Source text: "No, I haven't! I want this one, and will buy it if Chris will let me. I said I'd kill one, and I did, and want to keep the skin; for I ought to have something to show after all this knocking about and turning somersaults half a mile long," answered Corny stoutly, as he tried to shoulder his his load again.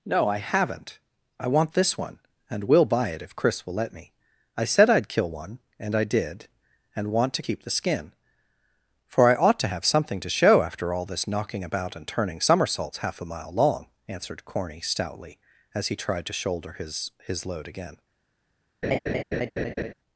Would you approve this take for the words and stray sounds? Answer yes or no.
no